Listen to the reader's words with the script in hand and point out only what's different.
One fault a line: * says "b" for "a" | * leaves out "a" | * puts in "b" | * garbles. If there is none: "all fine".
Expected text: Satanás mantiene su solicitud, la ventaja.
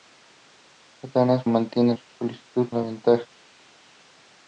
all fine